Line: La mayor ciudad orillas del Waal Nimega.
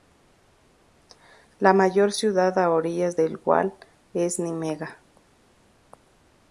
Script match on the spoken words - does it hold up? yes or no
no